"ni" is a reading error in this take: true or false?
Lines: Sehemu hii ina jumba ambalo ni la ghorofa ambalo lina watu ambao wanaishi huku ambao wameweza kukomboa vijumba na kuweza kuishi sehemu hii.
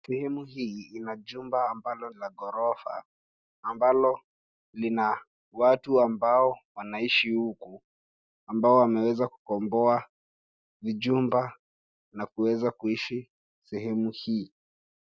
true